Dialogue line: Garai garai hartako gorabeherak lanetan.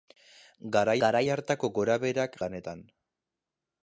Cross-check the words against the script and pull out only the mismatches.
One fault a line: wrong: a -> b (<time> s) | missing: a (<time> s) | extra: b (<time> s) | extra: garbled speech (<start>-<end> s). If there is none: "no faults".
no faults